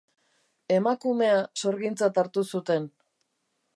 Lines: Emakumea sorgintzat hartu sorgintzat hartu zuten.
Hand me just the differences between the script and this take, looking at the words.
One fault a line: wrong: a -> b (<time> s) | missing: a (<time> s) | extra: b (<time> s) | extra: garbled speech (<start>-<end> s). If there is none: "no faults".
missing: sorgintzat hartu (2.4 s)